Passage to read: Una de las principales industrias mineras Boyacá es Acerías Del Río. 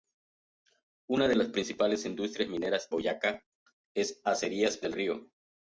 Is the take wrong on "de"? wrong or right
right